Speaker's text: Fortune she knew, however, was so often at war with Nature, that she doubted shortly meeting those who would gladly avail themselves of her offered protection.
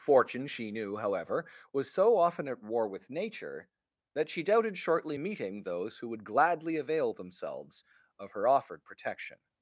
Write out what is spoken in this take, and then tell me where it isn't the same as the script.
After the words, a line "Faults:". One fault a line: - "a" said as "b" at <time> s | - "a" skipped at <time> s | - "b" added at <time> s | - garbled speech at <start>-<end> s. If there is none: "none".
Fortune she knew, however, was so often at war with Nature, that she doubted shortly meeting those who would gladly avail themselves of her offered protection.
Faults:
none